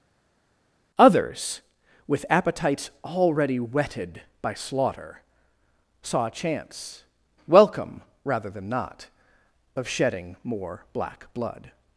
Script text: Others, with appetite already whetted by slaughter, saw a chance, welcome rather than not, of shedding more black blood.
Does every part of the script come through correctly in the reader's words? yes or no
no